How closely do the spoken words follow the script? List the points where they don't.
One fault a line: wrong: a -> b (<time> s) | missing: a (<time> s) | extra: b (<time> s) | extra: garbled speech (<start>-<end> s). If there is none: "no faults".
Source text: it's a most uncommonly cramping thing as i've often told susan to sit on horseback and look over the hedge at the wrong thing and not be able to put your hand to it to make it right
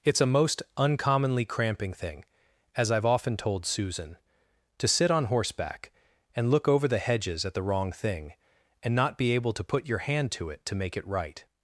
wrong: hedge -> hedges (7.0 s)